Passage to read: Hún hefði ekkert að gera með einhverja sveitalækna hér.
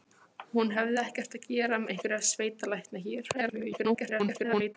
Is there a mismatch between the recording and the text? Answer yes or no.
yes